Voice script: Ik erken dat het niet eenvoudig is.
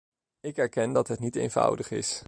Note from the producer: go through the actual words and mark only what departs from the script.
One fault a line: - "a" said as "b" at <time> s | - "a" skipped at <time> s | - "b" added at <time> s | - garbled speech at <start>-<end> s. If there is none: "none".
none